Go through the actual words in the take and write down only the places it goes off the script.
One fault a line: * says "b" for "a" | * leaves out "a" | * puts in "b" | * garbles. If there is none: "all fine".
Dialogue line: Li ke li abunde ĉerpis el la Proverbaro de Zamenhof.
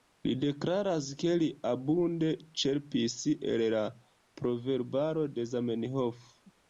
* puts in "deklaras"